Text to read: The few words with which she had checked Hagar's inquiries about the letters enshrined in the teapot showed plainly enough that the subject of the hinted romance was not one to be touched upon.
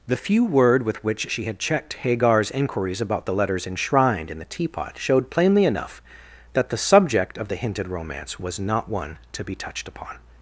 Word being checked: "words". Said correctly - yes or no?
no